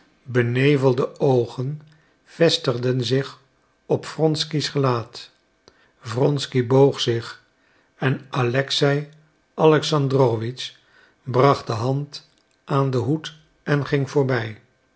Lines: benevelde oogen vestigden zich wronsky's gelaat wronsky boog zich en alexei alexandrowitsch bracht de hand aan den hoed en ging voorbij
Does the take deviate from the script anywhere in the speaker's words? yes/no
yes